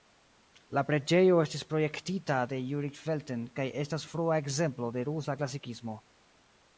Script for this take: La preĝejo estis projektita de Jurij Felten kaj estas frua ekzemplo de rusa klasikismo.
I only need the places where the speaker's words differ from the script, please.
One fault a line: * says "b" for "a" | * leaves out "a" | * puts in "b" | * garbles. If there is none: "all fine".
all fine